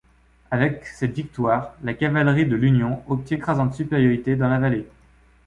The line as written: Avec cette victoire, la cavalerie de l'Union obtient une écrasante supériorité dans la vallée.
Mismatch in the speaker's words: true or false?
true